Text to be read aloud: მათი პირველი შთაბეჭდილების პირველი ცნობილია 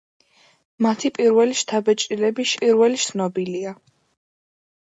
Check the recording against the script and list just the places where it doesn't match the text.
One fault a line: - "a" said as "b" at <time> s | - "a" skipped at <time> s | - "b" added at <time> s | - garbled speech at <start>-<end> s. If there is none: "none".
none